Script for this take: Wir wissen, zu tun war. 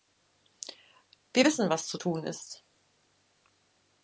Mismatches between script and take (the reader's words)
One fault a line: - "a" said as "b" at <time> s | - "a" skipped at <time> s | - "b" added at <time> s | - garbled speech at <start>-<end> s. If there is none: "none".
- "was" added at 1.7 s
- "war" said as "ist" at 2.2 s